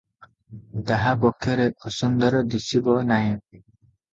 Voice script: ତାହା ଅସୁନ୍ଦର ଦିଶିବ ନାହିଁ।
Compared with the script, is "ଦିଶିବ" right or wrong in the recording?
right